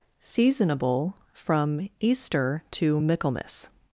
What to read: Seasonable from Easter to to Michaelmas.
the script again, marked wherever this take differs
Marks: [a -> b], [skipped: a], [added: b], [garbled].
Seasonable from Easter to [skipped: to] Michaelmas.